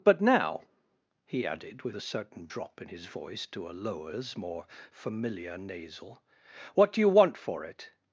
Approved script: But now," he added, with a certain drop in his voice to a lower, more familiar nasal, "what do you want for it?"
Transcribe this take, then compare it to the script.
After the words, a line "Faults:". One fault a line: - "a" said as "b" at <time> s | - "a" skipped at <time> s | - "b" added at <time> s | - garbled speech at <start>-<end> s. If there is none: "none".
But now," he added, with a certain drop in his voice to a lowers, more familiar nasal, "what do you want for it?"
Faults:
- "lower" said as "lowers" at 3.7 s